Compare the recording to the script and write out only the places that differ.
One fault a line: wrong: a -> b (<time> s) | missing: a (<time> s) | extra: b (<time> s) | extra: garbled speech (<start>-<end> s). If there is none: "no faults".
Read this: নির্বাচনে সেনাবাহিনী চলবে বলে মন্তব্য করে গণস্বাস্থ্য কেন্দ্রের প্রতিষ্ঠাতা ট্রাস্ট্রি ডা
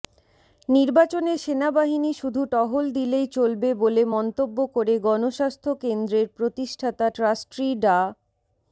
extra: শুধু টহল দিলেই (2.1 s)